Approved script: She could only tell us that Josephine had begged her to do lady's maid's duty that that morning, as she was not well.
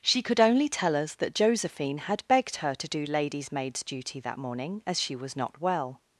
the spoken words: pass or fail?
fail